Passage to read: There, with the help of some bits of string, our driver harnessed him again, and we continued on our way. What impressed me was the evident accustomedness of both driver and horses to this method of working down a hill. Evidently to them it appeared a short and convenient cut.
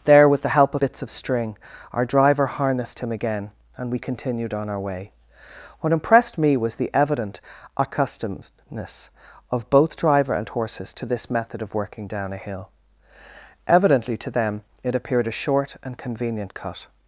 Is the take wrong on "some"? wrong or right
wrong